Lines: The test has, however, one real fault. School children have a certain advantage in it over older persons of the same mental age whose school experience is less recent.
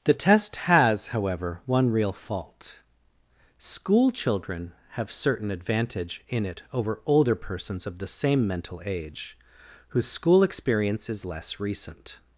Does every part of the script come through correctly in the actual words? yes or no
no